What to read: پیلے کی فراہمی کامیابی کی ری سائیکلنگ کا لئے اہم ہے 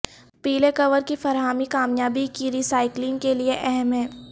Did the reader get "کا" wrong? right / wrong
wrong